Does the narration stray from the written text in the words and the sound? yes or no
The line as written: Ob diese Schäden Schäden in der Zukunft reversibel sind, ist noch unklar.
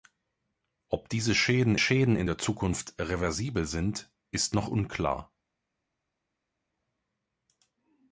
no